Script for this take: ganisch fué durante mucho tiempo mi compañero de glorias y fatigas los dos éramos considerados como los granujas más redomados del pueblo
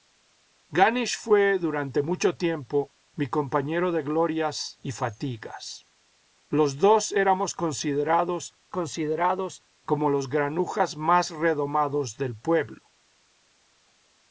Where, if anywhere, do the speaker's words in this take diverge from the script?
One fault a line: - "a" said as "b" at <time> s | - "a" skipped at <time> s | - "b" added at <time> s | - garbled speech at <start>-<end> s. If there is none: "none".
- "considerados" added at 8.7 s